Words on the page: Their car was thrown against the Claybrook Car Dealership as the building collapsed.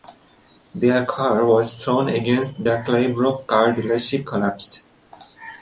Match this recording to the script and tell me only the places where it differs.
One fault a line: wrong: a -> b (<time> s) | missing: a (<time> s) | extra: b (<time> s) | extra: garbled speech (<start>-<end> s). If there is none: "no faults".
missing: as the building (4.3 s)